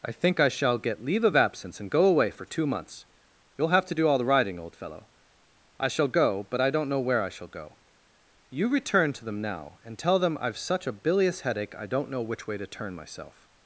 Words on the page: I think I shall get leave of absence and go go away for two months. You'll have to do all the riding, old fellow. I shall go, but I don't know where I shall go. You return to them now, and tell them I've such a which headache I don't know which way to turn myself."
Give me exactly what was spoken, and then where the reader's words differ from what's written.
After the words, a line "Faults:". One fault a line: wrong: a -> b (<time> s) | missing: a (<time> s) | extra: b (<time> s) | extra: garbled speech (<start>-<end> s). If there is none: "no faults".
I think I shall get leave of absence and go away for two months. You'll have to do all the riding, old fellow. I shall go, but I don't know where I shall go. You return to them now, and tell them I've such a bilious headache I don't know which way to turn myself."
Faults:
missing: go (2.0 s)
wrong: which -> bilious (10.9 s)